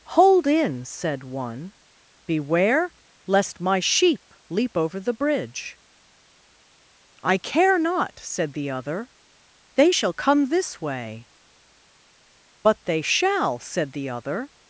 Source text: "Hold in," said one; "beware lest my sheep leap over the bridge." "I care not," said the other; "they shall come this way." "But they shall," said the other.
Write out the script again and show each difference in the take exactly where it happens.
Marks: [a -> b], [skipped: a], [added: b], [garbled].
"Hold in," said one; "beware lest my sheep leap over the bridge." "I care not," said the other; "they shall come this way." "But they shall," said the other.